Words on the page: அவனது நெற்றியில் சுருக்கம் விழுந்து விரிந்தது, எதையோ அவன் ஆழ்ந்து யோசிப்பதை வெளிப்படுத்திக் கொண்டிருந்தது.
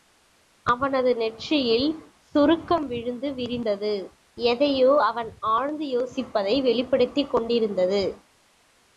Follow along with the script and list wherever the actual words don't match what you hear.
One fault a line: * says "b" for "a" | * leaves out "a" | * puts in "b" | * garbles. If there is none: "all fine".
all fine